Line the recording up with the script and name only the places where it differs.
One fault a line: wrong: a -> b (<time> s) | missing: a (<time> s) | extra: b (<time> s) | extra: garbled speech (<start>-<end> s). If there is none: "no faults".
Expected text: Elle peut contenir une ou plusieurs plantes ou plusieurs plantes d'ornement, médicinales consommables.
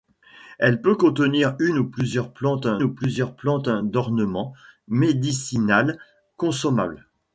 no faults